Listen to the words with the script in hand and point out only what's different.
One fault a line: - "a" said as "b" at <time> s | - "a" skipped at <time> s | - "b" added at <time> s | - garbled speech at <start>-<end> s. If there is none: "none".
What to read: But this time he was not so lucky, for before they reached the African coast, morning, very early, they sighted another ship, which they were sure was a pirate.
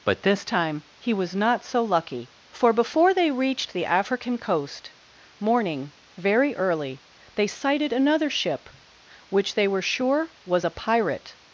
none